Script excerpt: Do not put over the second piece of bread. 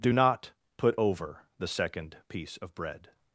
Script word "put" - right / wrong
right